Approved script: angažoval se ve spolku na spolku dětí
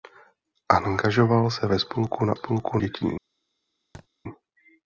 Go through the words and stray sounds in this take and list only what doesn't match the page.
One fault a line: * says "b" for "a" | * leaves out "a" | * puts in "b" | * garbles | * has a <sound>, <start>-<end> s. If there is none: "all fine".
* has a thud, 3.9-4.1 s